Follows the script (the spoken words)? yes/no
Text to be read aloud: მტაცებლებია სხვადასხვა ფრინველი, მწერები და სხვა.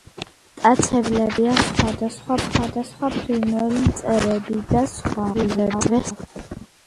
no